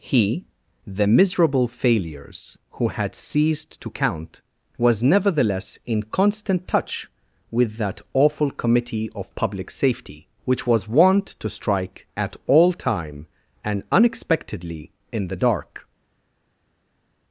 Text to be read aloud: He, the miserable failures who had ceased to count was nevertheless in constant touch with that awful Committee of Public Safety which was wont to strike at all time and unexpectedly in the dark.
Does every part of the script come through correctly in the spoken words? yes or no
yes